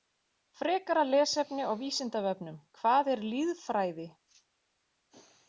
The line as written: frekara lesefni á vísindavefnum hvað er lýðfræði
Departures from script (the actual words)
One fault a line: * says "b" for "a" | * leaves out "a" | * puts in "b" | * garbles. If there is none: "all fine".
all fine